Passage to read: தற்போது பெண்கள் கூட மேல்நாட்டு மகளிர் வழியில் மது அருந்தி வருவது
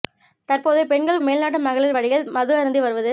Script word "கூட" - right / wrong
wrong